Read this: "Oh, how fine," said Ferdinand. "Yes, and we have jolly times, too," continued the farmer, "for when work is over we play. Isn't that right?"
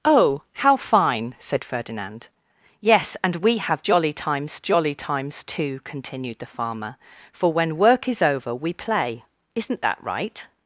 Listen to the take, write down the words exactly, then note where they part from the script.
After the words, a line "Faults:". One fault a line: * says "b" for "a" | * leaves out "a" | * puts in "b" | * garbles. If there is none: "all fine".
"Oh, how fine," said Ferdinand. "Yes, and we have jolly times jolly times, too," continued the farmer, "for when work is over we play. Isn't that right?"
Faults:
* puts in "jolly times"